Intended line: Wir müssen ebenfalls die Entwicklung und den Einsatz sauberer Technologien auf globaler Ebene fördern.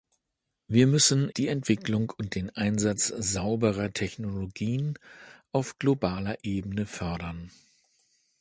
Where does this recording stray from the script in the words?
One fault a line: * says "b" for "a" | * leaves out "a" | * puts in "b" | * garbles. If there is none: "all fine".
* leaves out "ebenfalls"